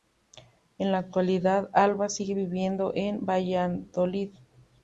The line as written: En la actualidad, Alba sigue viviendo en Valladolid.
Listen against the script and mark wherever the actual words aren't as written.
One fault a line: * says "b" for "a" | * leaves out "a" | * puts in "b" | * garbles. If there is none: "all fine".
all fine